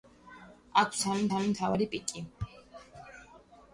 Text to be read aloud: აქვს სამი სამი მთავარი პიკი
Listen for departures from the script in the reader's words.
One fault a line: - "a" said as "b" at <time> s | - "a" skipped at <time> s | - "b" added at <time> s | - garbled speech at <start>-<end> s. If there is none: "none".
none